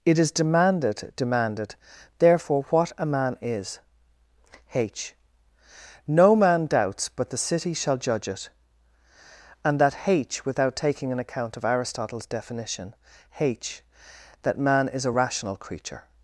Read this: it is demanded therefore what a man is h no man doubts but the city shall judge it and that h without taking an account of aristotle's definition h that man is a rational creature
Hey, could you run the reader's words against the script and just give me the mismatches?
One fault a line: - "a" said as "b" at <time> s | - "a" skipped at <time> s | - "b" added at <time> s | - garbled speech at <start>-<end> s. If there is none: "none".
- "demanded" added at 1.1 s